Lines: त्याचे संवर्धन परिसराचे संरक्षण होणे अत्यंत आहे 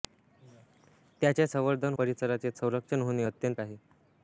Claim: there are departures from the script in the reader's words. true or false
false